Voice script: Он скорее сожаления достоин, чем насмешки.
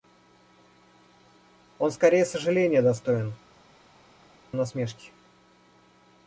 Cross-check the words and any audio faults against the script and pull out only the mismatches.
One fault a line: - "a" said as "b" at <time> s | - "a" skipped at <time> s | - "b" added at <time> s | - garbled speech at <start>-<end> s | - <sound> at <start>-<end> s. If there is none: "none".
- "чем" skipped at 3.3 s